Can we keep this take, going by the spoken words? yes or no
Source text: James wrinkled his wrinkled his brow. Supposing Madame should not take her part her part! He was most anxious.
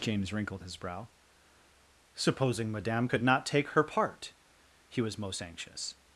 no